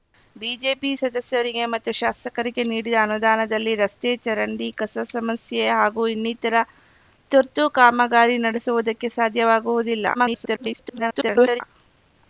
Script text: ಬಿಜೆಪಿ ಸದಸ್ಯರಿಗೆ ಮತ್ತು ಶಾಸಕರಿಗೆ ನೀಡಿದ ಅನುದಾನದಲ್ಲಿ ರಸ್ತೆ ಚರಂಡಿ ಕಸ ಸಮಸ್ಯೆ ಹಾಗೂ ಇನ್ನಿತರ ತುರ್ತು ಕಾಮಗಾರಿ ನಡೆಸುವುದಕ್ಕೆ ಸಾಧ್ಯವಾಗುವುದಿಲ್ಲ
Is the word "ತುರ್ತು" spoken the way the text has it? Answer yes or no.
yes